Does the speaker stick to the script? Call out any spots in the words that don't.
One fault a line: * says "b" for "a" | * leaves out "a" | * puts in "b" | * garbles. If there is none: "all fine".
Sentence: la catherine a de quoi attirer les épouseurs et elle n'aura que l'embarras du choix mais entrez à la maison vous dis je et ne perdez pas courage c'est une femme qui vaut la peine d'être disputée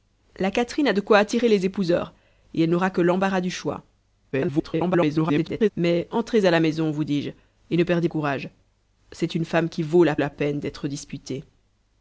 * garbles
* leaves out "pas"
* puts in "la"